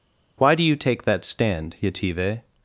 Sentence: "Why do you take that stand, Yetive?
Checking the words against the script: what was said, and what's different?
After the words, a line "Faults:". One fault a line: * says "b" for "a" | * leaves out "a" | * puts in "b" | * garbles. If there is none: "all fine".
"Why do you take that stand, Yetive?
Faults:
all fine